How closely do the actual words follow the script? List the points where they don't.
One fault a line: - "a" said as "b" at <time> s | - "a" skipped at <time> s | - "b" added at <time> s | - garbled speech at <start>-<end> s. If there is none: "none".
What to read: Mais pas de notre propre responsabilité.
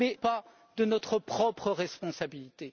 none